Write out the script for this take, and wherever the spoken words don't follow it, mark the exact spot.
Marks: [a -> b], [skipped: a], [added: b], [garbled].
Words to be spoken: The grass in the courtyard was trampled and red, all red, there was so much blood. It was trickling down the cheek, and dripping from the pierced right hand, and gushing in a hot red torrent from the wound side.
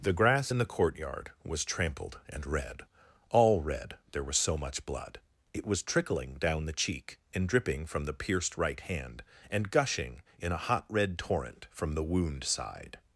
The grass in the courtyard was trampled and red, all red, there was so much blood. It was trickling down the cheek, and dripping from the pierced right hand, and gushing in a hot red torrent from the wound side.